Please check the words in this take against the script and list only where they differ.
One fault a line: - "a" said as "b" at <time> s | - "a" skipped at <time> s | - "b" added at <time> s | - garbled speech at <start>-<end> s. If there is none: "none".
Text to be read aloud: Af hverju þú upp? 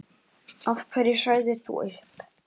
- "sagðir" added at 1.2 s